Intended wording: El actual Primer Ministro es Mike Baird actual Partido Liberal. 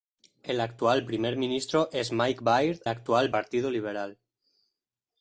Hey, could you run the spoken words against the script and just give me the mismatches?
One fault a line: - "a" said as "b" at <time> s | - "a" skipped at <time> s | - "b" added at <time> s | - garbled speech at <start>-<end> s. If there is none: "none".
none